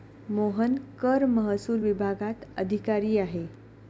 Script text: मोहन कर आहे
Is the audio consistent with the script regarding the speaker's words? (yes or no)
no